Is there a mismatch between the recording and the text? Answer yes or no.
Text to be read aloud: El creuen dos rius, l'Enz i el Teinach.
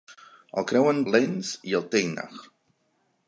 yes